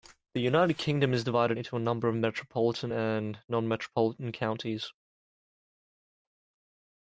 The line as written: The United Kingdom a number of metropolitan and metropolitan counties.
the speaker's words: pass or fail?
fail